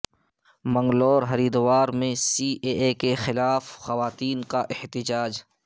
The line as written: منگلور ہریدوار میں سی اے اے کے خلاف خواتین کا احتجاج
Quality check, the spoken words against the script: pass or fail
pass